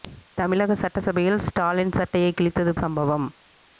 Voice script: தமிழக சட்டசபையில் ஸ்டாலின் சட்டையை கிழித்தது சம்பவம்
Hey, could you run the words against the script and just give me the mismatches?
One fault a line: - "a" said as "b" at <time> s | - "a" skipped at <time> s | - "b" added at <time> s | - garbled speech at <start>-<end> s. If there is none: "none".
none